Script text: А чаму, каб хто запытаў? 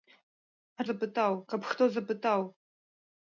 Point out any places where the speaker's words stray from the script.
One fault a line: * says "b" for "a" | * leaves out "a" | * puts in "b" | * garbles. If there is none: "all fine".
* says "запытаў" for "чаму"